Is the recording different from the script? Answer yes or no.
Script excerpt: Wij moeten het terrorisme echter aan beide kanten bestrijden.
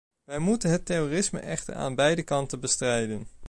no